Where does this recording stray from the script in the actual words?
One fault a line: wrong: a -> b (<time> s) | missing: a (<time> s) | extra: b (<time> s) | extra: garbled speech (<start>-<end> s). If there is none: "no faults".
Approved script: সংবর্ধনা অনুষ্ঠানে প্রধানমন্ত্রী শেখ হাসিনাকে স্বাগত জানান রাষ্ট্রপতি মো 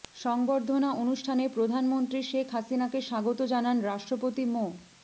no faults